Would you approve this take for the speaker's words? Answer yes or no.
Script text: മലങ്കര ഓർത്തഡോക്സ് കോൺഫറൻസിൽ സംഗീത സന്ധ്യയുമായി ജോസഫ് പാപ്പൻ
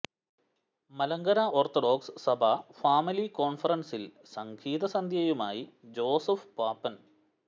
no